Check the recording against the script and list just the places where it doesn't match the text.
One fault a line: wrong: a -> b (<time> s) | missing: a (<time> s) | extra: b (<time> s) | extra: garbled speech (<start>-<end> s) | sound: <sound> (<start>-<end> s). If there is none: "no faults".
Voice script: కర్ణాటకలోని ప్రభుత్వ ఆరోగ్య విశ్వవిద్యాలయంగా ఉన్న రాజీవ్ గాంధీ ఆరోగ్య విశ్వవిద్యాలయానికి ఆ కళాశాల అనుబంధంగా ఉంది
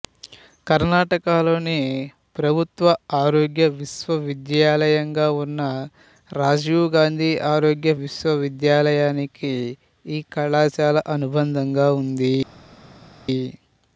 wrong: ఆ -> ఈ (10.0 s)